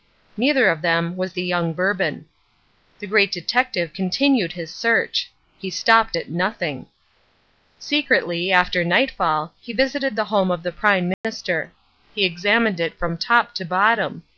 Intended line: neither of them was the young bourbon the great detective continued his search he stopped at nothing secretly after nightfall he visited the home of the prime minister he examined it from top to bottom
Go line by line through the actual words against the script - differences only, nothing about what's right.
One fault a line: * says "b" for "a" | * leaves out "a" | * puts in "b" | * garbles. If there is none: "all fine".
all fine